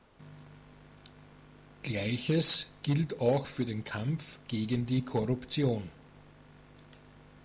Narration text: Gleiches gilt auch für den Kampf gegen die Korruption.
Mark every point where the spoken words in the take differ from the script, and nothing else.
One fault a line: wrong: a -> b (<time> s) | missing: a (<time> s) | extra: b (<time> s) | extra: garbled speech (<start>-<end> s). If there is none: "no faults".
no faults